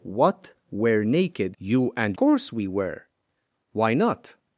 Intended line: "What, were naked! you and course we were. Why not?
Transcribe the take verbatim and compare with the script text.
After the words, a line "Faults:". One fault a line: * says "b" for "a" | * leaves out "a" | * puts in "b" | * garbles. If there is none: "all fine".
"What, were naked! you and course we were. Why not?
Faults:
all fine